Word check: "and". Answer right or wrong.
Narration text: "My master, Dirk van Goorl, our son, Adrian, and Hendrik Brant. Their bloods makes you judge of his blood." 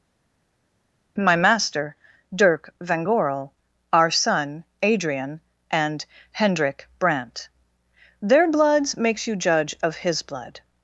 right